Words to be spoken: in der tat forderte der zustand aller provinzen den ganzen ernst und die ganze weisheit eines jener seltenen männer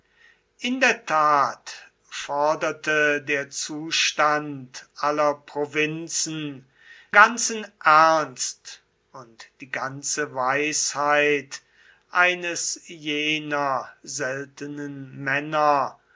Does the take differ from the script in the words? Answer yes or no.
yes